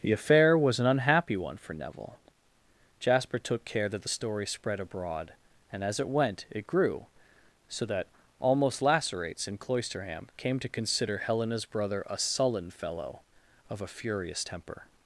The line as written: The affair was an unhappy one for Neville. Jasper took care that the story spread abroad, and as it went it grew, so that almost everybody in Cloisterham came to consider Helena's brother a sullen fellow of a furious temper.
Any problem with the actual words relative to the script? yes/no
yes